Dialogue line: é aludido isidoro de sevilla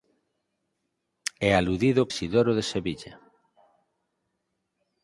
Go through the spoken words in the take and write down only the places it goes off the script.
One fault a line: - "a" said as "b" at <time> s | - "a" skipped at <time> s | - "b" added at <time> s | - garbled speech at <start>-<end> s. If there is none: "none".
none